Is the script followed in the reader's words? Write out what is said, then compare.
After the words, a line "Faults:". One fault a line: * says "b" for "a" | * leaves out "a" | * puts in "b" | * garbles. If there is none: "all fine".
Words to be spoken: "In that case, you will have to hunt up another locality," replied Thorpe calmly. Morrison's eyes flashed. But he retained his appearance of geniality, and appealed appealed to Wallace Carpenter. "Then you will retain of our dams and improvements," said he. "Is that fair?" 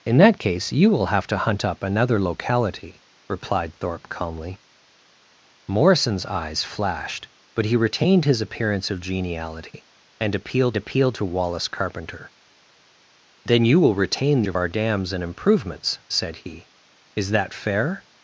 "In that case, you will have to hunt up another locality," replied Thorpe calmly. Morrison's eyes flashed. But he retained his appearance of geniality, and appealed appealed to Wallace Carpenter. "Then you will retain of our dams and improvements," said he. "Is that fair?"
Faults:
all fine